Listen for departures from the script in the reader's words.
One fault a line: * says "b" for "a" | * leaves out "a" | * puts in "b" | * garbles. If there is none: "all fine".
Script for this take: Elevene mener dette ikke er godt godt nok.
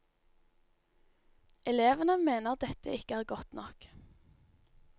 * leaves out "godt"